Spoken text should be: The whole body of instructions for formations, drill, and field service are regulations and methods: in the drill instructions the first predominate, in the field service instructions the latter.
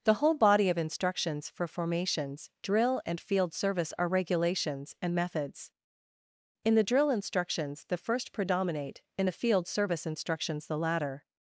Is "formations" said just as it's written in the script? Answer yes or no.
yes